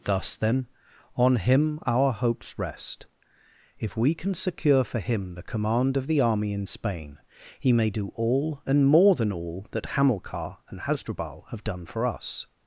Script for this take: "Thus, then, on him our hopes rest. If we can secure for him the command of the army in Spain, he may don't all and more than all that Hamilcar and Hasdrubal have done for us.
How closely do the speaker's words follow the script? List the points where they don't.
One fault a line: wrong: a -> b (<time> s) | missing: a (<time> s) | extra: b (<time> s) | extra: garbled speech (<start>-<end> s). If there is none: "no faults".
wrong: don't -> do (7.9 s)